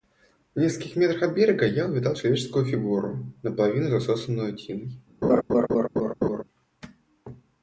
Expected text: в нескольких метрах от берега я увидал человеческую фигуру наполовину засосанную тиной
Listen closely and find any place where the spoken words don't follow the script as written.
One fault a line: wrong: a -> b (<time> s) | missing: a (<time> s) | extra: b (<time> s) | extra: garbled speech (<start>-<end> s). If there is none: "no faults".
no faults